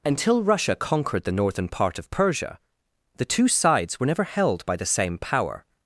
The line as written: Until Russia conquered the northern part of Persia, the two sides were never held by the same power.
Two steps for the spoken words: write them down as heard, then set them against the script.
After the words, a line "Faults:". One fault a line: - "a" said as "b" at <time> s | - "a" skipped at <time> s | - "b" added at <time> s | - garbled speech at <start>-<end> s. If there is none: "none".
Until Russia conquered the northern part of Persia, the two sides were never held by the same power.
Faults:
none